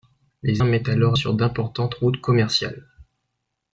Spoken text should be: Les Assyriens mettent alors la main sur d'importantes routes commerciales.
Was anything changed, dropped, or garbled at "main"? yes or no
yes